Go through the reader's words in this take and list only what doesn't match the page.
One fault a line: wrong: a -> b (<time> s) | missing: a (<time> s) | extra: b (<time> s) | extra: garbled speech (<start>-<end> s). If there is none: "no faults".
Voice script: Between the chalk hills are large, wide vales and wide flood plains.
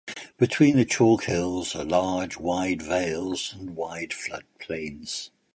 no faults